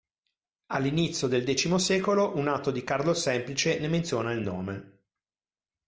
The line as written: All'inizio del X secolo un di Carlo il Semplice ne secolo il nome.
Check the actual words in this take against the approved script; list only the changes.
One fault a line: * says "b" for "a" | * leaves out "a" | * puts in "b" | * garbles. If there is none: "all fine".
* puts in "atto"
* says "menziona" for "secolo"